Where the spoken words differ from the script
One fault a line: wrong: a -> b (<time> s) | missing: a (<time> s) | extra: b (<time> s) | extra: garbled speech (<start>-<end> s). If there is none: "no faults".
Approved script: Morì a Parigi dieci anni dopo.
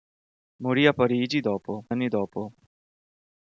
wrong: dieci -> dopo (1.4 s)